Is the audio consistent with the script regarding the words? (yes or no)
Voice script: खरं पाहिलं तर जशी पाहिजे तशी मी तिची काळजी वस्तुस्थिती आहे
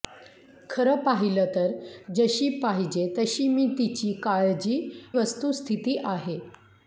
yes